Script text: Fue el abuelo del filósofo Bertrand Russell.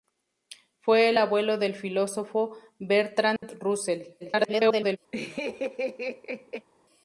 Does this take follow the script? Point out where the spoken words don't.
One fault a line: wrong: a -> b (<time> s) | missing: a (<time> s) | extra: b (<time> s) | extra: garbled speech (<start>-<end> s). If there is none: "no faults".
extra: garbled speech (4.2-5.0 s)